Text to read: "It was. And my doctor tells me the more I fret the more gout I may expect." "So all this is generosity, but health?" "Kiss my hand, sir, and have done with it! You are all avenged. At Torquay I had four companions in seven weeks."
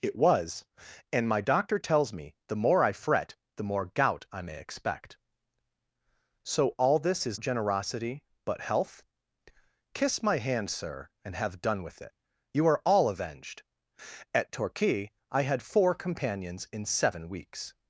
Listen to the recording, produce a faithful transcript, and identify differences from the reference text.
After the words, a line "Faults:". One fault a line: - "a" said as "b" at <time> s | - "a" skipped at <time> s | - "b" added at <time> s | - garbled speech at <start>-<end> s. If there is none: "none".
"It was. And my doctor tells me the more I fret the more gout I may expect." "So all this is generosity, but health?" "Kiss my hand, sir, and have done with it! You are all avenged. At Torquay I had four companions in seven weeks."
Faults:
none